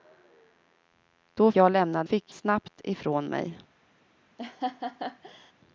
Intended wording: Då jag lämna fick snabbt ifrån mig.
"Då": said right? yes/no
yes